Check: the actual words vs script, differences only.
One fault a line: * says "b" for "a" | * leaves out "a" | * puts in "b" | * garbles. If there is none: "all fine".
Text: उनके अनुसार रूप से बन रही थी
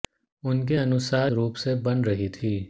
all fine